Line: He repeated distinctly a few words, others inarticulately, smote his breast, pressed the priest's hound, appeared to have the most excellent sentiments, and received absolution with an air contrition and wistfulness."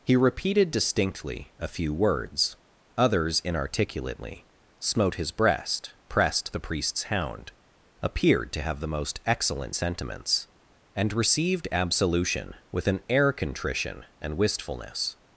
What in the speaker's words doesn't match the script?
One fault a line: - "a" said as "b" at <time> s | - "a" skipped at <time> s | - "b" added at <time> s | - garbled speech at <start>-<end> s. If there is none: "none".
none